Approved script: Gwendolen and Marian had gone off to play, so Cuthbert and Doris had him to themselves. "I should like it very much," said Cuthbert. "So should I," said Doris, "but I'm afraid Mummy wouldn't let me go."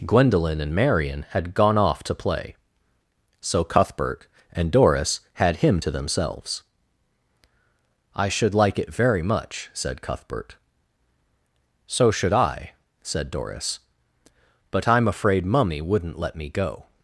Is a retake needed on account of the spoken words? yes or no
no